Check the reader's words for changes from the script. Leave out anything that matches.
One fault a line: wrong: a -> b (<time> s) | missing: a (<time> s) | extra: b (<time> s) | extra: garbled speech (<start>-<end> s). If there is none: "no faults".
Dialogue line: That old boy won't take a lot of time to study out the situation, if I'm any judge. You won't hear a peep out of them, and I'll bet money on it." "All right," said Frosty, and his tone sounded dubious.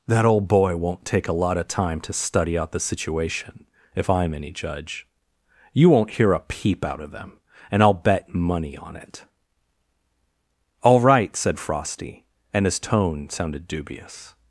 no faults